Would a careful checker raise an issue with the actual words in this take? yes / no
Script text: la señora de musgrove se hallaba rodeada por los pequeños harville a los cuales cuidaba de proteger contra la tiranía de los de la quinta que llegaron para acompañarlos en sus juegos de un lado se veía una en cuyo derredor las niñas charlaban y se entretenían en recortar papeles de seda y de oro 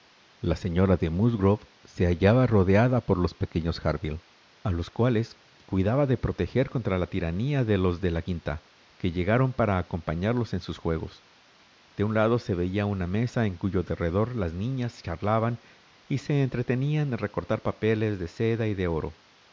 yes